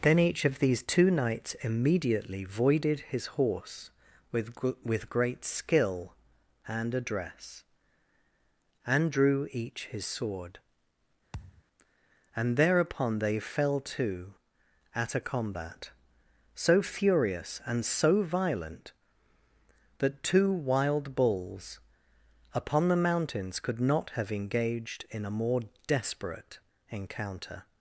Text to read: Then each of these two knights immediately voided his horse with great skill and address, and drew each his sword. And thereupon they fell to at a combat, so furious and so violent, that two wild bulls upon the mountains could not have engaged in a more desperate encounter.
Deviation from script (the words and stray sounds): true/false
true